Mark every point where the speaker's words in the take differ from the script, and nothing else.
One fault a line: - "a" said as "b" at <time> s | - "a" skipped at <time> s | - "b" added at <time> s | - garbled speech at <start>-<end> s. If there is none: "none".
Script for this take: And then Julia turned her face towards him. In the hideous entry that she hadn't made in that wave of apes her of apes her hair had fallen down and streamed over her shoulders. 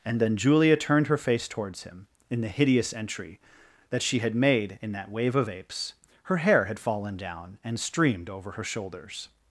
- "hadn't" said as "had" at 4.2 s
- "of apes her" skipped at 6.4 s